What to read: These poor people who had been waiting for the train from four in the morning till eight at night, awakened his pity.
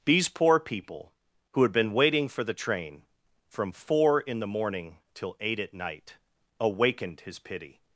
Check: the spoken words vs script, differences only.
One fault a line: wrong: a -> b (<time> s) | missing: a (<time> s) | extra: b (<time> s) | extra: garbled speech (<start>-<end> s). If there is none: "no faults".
no faults